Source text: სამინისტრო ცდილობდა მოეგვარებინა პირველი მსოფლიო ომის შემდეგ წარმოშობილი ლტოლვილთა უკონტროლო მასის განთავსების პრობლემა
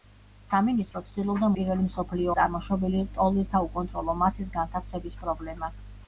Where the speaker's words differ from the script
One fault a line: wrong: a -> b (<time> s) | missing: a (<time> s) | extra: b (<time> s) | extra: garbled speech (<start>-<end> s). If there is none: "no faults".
missing: მოეგვარებინა (1.5 s)
missing: ომის შემდეგ (2.3 s)